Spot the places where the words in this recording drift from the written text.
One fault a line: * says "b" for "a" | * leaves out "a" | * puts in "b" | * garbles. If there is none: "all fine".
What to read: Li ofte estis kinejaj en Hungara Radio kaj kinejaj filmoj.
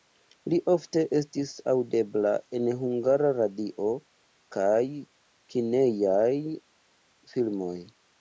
* says "aŭdebla" for "kinejaj"